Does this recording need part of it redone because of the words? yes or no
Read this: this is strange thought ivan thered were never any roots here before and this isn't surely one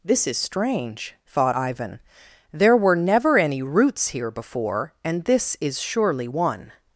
yes